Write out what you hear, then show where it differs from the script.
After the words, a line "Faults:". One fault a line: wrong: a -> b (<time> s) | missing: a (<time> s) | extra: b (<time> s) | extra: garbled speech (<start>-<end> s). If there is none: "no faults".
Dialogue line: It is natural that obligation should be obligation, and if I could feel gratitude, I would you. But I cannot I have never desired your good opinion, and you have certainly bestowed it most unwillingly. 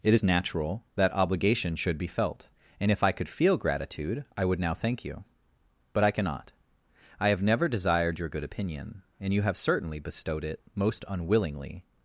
It is natural that obligation should be felt, and if I could feel gratitude, I would now thank you. But I cannot I have never desired your good opinion, and you have certainly bestowed it most unwillingly.
Faults:
wrong: obligation -> felt (2.1 s)
extra: now thank (4.6 s)